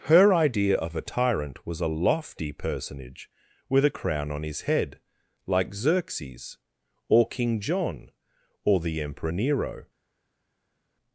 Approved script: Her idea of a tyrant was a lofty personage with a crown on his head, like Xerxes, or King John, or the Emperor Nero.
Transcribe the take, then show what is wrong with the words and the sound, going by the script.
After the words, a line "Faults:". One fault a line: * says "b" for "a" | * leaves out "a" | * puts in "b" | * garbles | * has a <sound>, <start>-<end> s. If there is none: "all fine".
Her idea of a tyrant was a lofty personage with a crown on his head, like Xerxes, or King John, or the Emperor Nero.
Faults:
all fine